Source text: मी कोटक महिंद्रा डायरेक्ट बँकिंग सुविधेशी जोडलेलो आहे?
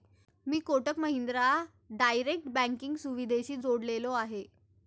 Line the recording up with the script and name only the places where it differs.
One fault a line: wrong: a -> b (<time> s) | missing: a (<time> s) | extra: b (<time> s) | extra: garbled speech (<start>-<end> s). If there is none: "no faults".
no faults